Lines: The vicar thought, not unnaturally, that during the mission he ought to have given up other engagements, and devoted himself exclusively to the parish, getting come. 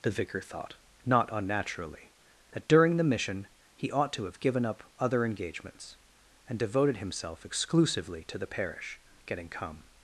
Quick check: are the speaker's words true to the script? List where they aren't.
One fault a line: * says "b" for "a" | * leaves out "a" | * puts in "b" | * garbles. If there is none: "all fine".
all fine